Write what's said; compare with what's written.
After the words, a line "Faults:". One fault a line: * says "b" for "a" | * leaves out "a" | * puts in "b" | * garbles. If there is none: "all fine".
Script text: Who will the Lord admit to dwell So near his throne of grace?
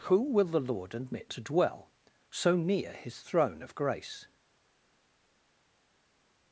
Who will the Lord admit to dwell So near his throne of grace?
Faults:
all fine